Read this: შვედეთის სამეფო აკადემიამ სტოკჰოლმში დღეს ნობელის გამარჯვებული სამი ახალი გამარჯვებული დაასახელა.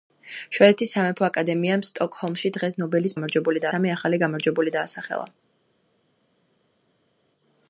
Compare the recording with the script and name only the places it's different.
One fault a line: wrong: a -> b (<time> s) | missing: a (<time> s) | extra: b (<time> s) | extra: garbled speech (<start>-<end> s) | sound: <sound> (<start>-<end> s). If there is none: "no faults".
no faults